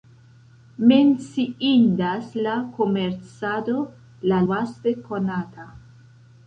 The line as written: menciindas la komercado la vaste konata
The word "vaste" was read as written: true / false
true